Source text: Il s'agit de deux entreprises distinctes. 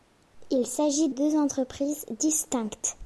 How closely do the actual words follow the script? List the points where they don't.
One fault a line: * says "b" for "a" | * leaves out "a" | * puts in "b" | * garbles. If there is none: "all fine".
* leaves out "de"